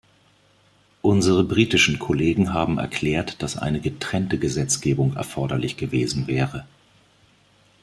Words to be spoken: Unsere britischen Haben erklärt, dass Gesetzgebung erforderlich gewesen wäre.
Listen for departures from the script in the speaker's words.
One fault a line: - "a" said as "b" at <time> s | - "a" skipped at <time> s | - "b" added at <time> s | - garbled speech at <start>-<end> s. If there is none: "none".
- "Kollegen" added at 2.0 s
- "eine getrennte" added at 3.5 s